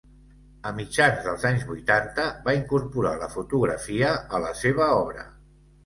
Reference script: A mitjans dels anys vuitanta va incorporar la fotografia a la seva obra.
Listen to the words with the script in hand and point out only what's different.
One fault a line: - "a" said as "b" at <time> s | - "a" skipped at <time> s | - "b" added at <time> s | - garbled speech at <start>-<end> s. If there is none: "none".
none